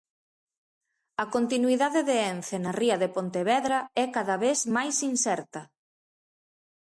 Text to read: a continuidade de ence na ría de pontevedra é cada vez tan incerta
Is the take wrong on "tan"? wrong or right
wrong